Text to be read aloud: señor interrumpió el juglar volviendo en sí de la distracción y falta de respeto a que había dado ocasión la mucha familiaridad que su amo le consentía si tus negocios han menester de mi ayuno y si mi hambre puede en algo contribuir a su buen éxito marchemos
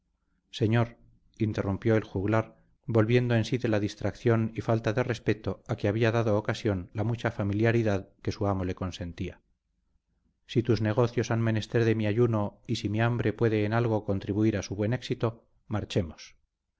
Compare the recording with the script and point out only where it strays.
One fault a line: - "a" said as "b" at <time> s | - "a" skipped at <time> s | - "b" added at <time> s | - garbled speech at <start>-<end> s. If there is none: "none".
none